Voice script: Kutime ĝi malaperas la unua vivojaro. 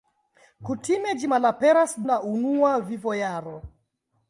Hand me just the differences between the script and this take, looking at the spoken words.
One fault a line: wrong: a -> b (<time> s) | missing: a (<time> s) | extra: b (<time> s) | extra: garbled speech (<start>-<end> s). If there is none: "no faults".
no faults